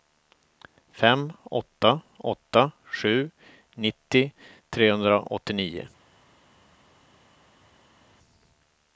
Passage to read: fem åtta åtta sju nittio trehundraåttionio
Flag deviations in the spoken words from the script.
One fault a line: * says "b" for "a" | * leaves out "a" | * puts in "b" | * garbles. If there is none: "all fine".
all fine